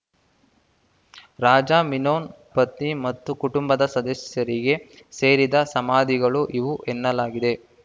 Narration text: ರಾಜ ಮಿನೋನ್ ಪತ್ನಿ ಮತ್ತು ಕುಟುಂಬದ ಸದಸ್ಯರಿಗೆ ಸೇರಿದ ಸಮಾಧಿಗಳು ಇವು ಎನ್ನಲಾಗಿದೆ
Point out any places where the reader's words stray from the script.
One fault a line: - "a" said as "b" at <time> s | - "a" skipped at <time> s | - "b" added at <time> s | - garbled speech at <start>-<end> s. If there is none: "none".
none